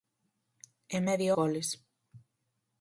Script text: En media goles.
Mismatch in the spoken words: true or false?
false